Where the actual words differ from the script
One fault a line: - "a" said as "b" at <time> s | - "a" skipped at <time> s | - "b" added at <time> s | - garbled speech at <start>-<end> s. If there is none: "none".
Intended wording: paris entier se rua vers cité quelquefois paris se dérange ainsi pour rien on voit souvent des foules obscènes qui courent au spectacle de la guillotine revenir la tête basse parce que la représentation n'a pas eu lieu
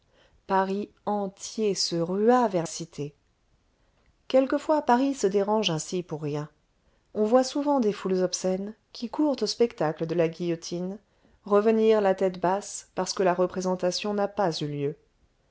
none